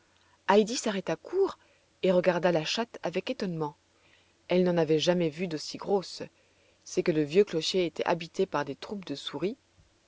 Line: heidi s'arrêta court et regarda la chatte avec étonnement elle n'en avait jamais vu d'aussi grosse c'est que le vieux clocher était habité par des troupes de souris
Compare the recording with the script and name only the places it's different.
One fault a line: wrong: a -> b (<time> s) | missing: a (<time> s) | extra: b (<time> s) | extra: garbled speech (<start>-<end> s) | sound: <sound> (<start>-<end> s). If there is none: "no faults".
no faults